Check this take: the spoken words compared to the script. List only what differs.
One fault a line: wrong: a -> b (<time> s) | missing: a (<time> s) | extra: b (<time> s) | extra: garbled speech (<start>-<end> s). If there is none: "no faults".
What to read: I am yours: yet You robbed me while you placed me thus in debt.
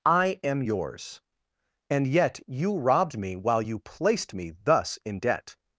extra: and (1.9 s)